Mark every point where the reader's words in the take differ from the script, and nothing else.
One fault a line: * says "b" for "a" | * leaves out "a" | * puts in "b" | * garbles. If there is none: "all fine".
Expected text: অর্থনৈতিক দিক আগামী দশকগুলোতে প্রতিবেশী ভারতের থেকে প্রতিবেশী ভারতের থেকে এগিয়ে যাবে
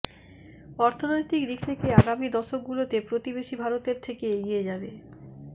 * puts in "থেকে"
* leaves out "প্রতিবেশী ভারতের থেকে"